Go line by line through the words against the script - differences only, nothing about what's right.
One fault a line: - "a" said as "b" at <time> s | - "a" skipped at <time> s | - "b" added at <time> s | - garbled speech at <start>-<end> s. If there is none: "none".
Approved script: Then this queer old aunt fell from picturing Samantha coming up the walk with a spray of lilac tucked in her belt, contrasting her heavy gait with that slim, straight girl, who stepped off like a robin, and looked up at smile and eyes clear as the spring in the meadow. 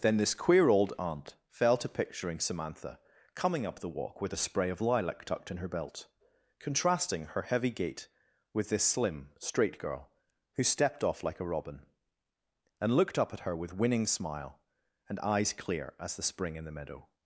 - "from" said as "to" at 1.8 s
- "that" said as "this" at 8.7 s
- "her with winning" added at 13.4 s